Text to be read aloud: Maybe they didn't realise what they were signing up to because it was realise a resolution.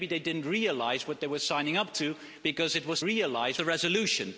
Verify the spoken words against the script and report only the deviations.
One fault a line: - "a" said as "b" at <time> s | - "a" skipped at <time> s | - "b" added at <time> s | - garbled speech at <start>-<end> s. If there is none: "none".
none